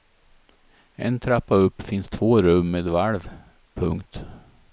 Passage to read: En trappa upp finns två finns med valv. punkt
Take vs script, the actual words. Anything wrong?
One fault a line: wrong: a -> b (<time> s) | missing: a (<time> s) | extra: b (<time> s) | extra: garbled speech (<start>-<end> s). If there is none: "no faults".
wrong: finns -> rum (2.4 s)